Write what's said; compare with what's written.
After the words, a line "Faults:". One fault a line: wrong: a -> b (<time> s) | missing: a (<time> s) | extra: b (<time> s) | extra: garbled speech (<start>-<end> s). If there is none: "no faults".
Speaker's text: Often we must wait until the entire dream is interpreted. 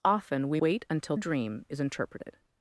Often we wait until dream is interpreted.
Faults:
missing: must (0.6 s)
missing: the entire (1.2 s)